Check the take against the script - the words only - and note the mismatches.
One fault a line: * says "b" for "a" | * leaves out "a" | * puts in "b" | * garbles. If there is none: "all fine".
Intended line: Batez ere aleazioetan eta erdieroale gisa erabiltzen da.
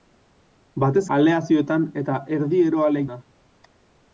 * leaves out "ere"
* leaves out "gisa erabiltzen"